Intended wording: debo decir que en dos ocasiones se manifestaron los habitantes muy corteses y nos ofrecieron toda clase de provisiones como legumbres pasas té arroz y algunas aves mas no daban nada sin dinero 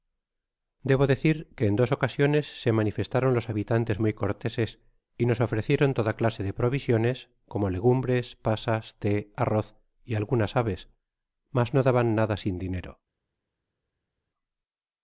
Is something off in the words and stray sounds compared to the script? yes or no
no